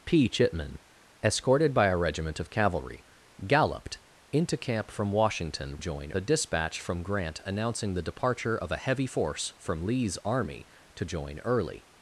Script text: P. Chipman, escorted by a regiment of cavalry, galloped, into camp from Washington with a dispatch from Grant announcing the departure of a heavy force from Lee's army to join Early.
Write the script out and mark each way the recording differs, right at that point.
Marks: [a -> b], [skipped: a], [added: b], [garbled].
P. Chipman, escorted by a regiment of cavalry, galloped, into camp from Washington [with -> join] a dispatch from Grant announcing the departure of a heavy force from Lee's army to join Early.